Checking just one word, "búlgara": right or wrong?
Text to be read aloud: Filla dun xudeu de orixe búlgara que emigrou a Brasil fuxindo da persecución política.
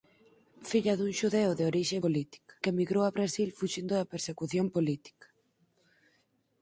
wrong